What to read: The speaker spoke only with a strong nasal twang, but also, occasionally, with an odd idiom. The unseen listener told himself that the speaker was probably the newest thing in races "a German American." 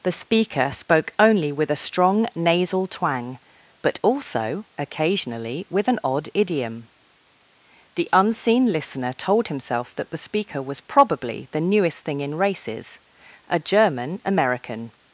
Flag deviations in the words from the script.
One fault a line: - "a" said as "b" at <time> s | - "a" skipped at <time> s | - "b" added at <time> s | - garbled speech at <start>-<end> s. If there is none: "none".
none